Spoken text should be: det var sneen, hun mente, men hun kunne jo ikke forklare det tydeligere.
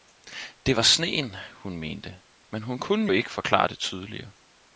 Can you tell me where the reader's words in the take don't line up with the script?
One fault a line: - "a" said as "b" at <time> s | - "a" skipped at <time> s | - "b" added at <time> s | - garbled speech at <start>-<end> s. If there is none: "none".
- "jo" skipped at 3.1 s